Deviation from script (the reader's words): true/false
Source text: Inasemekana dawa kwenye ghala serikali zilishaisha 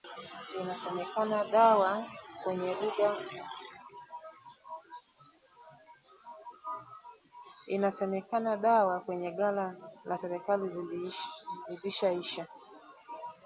true